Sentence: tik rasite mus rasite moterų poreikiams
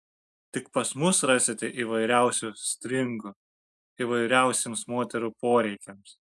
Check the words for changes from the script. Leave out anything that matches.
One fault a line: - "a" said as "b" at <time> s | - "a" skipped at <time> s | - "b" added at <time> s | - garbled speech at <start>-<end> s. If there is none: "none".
- "rasite" said as "pas" at 0.8 s
- "įvairiausių stringų įvairiausiems" added at 1.8 s